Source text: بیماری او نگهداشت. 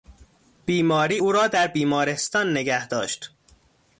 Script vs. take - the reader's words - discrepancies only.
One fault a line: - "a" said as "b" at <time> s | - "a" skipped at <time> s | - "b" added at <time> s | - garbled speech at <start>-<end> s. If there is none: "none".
- "را در بیمارستان" added at 1.3 s